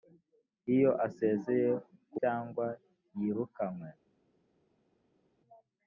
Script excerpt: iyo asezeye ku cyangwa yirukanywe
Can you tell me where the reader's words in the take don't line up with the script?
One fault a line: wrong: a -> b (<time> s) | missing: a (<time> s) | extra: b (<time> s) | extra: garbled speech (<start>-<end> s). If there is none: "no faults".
no faults